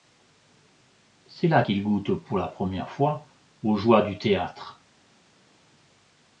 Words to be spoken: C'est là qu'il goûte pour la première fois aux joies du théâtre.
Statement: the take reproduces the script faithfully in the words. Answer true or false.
true